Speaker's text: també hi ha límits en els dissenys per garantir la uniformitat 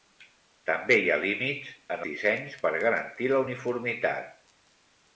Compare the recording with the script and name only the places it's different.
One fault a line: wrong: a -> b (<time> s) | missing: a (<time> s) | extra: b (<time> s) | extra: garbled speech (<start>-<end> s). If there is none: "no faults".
missing: els (2.0 s)